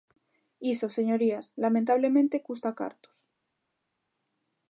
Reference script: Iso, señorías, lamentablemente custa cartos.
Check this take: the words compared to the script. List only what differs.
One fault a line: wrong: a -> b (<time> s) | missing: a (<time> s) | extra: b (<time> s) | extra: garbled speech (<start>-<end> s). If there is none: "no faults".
no faults